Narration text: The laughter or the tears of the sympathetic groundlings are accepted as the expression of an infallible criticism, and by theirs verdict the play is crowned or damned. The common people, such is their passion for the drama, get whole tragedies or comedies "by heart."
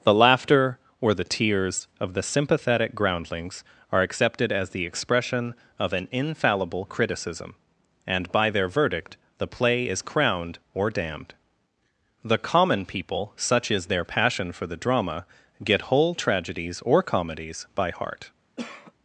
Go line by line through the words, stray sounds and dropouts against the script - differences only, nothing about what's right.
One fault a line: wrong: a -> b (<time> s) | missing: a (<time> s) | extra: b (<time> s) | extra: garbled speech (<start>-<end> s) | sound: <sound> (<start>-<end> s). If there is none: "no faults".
wrong: theirs -> their (8.5 s)
sound: cough (18.6-18.9 s)